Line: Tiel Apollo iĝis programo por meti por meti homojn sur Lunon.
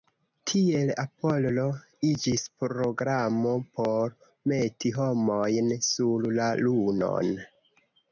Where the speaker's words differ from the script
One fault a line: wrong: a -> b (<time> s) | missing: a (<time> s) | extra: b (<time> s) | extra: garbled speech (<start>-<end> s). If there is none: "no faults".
missing: por meti (5.0 s)
extra: la (6.4 s)